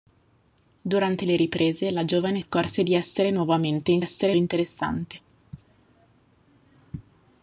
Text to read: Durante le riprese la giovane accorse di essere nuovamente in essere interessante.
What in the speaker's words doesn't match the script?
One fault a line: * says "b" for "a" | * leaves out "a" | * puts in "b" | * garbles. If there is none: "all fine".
all fine